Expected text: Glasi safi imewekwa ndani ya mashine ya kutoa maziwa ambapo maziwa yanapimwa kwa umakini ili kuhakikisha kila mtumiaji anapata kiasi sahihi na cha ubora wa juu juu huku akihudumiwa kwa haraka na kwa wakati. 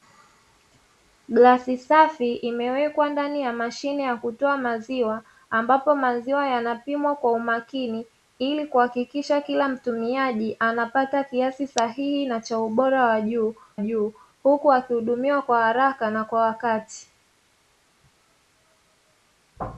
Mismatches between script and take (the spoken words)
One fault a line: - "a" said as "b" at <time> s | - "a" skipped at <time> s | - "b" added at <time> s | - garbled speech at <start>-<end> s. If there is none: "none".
none